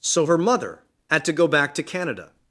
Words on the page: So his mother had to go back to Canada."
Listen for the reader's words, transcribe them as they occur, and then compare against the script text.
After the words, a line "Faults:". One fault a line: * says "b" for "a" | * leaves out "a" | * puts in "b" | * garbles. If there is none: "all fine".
So her mother had to go back to Canada."
Faults:
* says "her" for "his"